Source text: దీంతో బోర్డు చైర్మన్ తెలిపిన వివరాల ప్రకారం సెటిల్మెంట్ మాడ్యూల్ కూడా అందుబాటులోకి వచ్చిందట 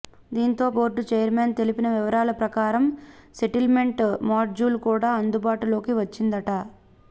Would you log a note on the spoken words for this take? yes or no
no